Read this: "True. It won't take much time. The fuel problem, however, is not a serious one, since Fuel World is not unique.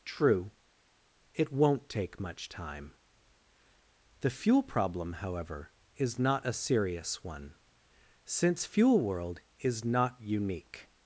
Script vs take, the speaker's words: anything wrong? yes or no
no